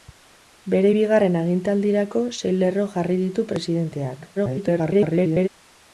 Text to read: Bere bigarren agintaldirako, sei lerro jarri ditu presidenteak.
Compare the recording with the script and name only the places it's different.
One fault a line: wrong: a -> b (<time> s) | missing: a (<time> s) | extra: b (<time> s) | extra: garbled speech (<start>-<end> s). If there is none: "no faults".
extra: garbled speech (4.3-5.5 s)